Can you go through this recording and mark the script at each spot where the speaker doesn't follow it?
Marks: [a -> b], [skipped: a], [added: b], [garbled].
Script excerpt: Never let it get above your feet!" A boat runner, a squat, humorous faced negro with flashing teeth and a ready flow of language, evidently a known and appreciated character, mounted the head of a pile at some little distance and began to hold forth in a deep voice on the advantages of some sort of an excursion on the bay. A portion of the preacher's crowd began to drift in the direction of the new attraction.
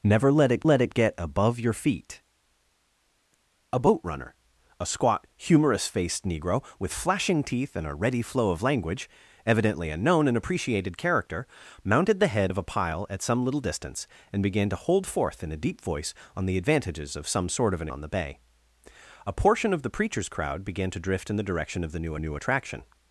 Never let it [added: let it] get above your feet!" A boat runner, a squat, humorous faced negro with flashing teeth and a ready flow of language, evidently a known and appreciated character, mounted the head of a pile at some little distance and began to hold forth in a deep voice on the advantages of some sort of an [skipped: excursion] on the bay. A portion of the preacher's crowd began to drift in the direction of the new [added: new] attraction.